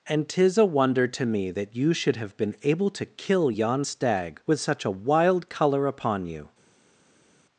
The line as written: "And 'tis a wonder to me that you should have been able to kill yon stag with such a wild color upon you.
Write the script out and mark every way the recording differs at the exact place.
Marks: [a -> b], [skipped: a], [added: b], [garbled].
"And 'tis a wonder to me that you should have been able to kill yon stag with such a wild color upon you.